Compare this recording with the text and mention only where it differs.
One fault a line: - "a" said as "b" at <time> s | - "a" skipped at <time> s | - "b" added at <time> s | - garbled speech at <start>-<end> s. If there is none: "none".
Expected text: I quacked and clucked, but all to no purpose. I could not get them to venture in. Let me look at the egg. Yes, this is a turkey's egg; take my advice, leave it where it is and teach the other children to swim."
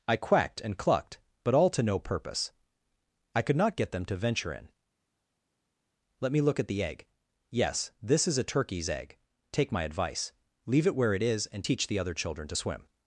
none